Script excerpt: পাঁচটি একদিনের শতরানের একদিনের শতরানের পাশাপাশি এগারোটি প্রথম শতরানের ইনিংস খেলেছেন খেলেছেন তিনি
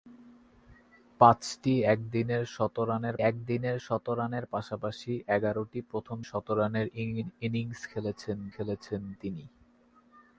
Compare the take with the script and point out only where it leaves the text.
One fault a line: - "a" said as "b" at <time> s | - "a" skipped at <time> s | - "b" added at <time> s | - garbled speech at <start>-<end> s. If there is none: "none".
none